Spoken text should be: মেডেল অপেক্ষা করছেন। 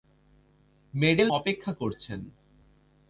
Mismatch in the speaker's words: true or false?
false